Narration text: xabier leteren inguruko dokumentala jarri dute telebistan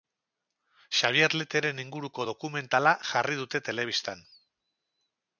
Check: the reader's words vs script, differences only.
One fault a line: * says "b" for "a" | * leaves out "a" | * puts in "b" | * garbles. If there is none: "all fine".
all fine